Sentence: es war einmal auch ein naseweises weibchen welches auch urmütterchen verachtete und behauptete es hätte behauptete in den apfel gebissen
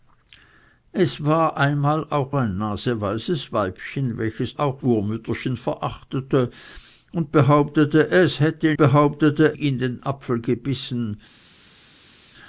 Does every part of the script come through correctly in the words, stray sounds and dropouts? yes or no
yes